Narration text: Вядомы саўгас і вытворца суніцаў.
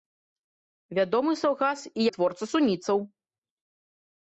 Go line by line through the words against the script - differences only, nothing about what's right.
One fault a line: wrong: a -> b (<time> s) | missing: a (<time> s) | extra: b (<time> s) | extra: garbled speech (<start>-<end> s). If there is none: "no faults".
no faults